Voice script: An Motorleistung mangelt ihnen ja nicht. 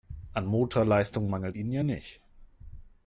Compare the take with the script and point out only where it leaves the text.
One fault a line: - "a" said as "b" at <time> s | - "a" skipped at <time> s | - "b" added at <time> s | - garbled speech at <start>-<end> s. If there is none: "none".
none